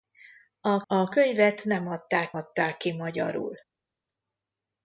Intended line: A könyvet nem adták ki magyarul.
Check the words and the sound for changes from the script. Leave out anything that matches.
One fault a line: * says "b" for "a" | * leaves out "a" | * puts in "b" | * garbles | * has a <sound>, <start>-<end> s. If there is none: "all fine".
* puts in "a"
* puts in "adták"